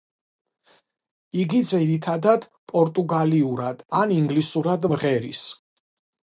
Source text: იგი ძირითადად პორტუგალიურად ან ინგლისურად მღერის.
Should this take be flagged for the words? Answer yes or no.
no